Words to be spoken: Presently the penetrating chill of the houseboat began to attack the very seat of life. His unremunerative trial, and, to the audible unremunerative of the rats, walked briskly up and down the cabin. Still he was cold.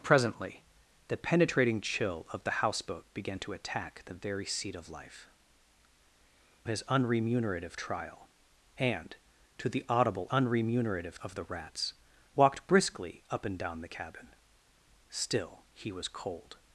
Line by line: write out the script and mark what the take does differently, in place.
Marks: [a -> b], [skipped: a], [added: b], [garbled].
Presently the penetrating chill of the houseboat began to attack the very seat of life. His unremunerative trial, and, to the audible unremunerative of the rats, walked briskly up and down the cabin. Still he was cold.